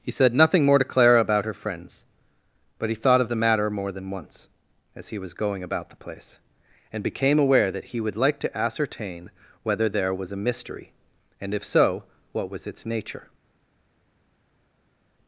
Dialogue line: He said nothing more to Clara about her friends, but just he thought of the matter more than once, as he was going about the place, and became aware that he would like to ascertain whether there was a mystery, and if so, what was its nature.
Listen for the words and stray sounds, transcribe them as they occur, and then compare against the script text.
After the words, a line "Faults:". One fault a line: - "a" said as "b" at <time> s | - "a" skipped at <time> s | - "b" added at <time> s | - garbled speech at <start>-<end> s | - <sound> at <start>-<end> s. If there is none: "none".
He said nothing more to Clara about her friends, but he thought of the matter more than once, as he was going about the place, and became aware that he would like to ascertain whether there was a mystery, and if so, what was its nature.
Faults:
- "just" skipped at 2.9 s